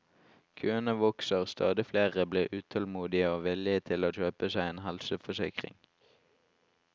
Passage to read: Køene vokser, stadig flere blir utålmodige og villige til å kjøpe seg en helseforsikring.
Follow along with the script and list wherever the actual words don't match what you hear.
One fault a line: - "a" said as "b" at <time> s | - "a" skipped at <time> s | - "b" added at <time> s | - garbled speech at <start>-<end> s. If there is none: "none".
none